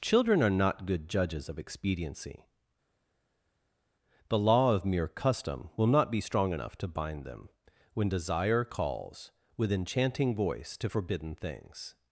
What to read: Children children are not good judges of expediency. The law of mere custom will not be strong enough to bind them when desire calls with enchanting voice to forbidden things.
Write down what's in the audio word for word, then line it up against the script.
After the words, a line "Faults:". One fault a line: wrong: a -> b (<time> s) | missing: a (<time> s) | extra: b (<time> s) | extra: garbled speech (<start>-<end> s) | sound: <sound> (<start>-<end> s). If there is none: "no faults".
Children are not good judges of expediency. The law of mere custom will not be strong enough to bind them when desire calls with enchanting voice to forbidden things.
Faults:
missing: children (0.4 s)